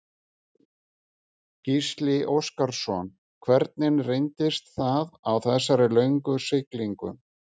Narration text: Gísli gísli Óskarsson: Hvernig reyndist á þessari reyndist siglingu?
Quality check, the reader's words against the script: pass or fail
fail